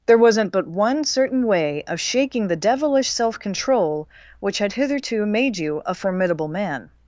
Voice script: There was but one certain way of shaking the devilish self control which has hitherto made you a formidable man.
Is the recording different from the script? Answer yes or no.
yes